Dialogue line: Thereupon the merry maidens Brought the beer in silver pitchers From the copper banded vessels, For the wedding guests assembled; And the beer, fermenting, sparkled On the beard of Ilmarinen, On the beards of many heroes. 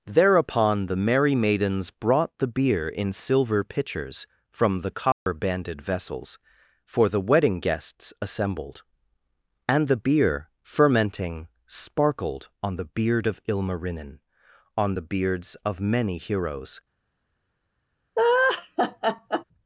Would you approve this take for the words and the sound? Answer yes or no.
no